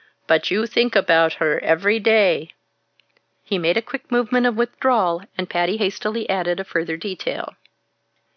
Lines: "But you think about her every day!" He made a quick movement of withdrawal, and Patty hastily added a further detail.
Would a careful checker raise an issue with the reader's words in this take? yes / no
no